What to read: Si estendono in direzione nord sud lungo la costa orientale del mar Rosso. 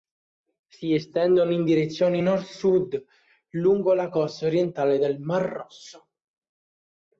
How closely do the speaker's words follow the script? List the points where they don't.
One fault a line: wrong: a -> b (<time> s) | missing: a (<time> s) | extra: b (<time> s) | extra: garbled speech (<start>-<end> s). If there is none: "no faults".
no faults